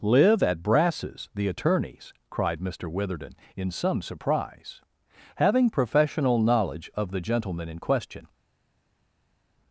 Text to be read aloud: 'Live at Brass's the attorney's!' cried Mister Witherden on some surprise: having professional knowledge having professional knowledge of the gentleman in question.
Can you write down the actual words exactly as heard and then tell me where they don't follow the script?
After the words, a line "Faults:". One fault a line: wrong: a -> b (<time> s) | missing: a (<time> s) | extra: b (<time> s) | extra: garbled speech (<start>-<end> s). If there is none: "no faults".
'Live at Brass's the attorney's!' cried Mister Witherden in some surprise: having professional knowledge of the gentleman in question.
Faults:
wrong: on -> in (3.5 s)
missing: having professional knowledge (6.9 s)